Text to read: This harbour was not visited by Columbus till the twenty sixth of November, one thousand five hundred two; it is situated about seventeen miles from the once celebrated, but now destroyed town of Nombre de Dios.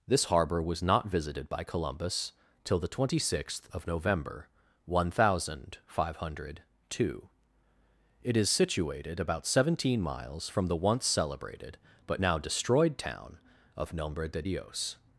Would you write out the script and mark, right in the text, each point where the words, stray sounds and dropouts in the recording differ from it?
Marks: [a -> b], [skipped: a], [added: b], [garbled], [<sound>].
This harbour was not visited by Columbus till the twenty sixth of November, one thousand five hundred two; it is situated about seventeen miles from the once celebrated, but now destroyed town of Nombre de Dios.